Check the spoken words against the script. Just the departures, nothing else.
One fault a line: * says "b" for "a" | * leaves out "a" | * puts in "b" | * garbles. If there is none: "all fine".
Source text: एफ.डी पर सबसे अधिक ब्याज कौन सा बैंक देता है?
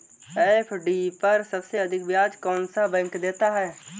all fine